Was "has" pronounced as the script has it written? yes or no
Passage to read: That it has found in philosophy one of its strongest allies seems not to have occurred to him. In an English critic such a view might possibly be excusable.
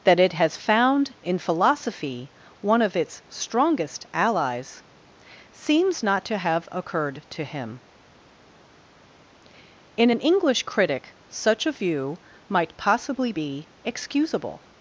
yes